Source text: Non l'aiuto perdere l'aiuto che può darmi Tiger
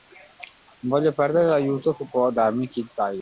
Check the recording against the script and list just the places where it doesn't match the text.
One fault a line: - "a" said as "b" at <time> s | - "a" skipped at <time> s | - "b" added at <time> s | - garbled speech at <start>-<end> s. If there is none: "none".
- "l'aiuto" said as "voglio" at 1.0 s
- "Kid" added at 2.7 s